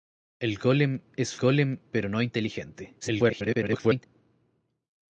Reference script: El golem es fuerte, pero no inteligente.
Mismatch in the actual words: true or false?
true